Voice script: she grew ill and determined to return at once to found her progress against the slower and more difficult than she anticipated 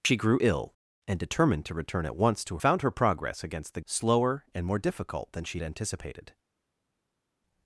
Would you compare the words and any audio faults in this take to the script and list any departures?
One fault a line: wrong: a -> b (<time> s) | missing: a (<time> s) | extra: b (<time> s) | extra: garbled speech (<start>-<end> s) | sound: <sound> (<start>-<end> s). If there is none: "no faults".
no faults